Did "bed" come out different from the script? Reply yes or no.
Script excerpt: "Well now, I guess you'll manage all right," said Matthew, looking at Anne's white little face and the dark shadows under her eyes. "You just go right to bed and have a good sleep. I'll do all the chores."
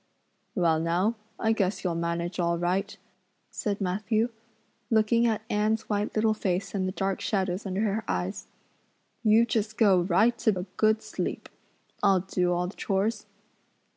yes